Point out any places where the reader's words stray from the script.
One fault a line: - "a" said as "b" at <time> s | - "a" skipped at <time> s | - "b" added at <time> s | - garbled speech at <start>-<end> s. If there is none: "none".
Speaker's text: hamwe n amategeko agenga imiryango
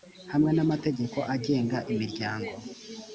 none